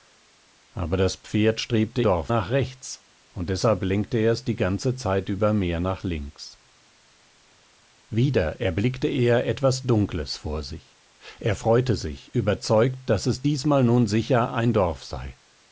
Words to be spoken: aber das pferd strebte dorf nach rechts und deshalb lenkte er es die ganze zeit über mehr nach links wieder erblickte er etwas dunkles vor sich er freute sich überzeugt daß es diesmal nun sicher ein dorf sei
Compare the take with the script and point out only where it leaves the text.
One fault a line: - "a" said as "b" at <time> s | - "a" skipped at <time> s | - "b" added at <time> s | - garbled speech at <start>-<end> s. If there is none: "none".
none